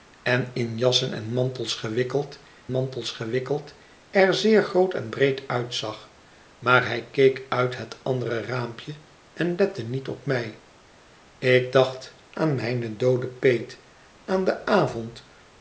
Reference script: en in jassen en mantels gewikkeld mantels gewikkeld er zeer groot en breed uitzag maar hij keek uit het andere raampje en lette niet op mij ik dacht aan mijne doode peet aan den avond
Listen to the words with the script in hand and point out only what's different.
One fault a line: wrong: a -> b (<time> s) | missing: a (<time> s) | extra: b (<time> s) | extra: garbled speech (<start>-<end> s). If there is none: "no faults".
no faults